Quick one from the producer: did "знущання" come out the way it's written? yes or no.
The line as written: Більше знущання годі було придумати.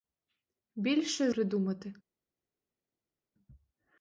no